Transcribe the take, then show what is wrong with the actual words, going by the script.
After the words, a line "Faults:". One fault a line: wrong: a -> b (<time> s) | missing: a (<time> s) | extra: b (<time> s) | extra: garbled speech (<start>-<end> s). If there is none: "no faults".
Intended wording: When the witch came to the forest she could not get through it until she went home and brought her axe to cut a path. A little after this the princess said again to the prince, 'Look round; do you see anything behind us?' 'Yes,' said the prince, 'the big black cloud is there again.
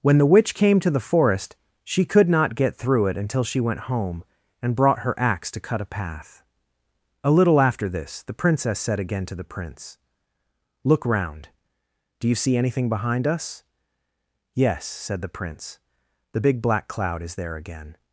When the witch came to the forest she could not get through it until she went home and brought her axe to cut a path. A little after this the princess said again to the prince, 'Look round; do you see anything behind us?' 'Yes,' said the prince, 'the big black cloud is there again.
Faults:
no faults